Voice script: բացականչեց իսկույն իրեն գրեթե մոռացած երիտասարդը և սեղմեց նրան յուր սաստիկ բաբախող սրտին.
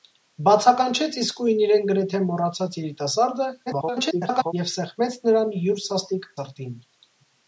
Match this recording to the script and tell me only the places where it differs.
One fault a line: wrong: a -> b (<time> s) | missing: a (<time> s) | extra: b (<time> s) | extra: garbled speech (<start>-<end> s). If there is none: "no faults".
extra: garbled speech (3.7-4.5 s)
missing: բաբախող (6.3 s)